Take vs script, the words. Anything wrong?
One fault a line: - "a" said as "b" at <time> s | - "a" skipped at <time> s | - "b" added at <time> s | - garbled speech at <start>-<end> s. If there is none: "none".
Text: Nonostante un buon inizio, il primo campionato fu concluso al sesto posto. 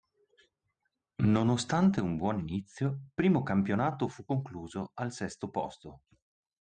- "il" skipped at 3.0 s